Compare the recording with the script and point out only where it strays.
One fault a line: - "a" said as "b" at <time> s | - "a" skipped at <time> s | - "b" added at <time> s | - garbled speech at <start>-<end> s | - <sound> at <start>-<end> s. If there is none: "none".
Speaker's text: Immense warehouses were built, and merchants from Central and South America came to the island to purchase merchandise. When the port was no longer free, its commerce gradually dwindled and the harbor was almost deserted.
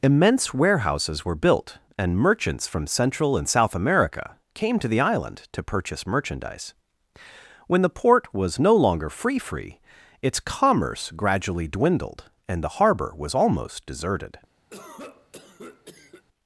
- "free" added at 9.4 s
- cough at 14.7-16.2 s